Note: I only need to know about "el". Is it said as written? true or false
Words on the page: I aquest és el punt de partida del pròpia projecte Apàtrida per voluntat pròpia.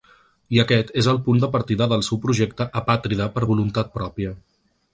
true